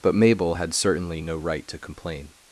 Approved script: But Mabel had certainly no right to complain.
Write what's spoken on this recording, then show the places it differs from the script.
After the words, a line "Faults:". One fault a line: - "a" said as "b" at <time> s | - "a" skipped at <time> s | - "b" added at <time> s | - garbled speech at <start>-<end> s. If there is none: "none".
But Mabel had certainly no right to complain.
Faults:
none